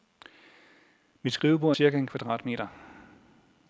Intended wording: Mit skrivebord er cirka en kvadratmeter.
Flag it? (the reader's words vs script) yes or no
no